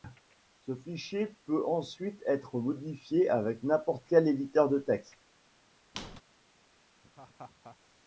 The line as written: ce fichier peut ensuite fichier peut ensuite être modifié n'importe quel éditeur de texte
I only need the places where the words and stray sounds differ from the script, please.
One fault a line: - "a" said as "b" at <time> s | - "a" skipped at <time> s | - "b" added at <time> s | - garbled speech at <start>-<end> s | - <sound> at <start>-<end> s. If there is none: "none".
- "fichier peut ensuite" skipped at 2.2 s
- "avec" added at 3.3 s
- squeak at 5.9-6.2 s
- laugh at 7.0-7.8 s